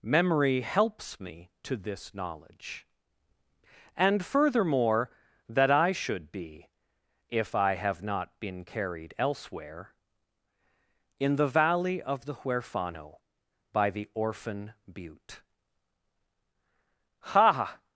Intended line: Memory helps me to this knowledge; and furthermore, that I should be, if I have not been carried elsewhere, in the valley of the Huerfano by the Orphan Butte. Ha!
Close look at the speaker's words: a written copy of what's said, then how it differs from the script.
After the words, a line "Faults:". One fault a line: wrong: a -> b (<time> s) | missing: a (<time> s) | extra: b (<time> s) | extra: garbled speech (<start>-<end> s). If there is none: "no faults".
Memory helps me to this knowledge; and furthermore, that I should be, if I have not been carried elsewhere, in the valley of the Huerfano by the Orphan Butte. Ha!
Faults:
no faults